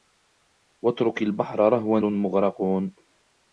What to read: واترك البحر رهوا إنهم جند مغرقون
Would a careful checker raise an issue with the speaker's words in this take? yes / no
yes